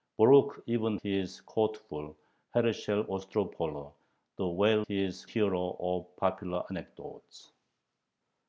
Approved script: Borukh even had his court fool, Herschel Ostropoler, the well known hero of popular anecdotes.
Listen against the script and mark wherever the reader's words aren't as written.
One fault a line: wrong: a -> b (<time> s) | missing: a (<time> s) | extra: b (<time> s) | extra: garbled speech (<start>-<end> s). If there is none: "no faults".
missing: had (1.0 s)
wrong: known -> his (4.9 s)